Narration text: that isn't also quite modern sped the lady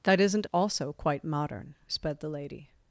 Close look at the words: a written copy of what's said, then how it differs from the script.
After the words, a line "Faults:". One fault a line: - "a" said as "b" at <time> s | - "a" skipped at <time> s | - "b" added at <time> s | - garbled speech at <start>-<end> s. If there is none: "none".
that isn't also quite modern sped the lady
Faults:
none